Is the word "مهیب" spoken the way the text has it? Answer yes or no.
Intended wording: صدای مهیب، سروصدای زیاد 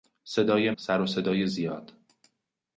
no